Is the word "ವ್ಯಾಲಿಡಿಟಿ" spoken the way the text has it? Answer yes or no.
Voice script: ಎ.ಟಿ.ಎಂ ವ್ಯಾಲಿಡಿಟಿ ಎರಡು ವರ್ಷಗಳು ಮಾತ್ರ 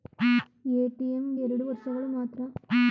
no